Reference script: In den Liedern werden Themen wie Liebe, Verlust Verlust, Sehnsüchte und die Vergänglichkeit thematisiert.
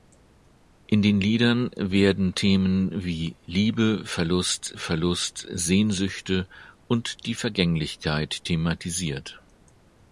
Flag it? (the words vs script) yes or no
no